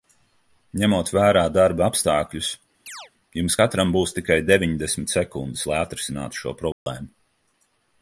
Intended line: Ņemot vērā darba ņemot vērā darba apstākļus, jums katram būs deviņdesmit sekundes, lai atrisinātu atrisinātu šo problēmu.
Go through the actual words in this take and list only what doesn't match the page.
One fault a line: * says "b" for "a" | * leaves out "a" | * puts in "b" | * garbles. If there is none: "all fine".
* leaves out "ņemot vērā darba"
* puts in "tikai"
* leaves out "atrisinātu"